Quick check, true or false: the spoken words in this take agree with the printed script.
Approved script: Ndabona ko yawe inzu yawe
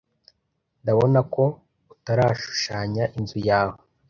false